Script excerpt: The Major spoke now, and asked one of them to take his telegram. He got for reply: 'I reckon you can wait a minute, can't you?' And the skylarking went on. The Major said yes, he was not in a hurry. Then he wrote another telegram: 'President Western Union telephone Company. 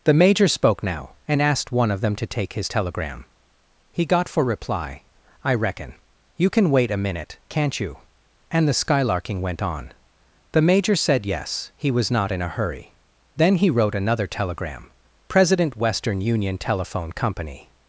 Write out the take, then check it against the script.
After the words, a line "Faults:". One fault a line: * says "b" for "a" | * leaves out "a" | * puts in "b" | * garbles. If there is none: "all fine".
The Major spoke now, and asked one of them to take his telegram. He got for reply: 'I reckon you can wait a minute, can't you?' And the skylarking went on. The Major said yes, he was not in a hurry. Then he wrote another telegram: 'President Western Union telephone Company.
Faults:
all fine